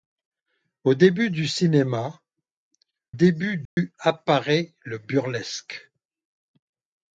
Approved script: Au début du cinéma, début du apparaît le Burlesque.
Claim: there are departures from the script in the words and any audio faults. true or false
true